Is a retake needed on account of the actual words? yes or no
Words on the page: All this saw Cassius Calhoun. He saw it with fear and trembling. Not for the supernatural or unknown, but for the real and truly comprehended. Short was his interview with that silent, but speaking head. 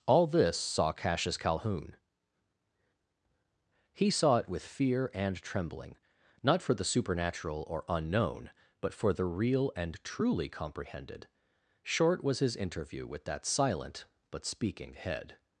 no